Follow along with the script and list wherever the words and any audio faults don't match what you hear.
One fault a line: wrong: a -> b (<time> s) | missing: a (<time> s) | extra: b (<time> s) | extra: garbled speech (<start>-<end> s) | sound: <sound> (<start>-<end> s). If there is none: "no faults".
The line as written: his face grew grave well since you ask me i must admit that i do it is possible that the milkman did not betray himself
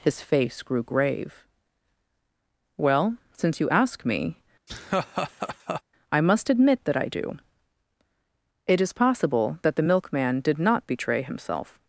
sound: laugh (4.7-5.8 s)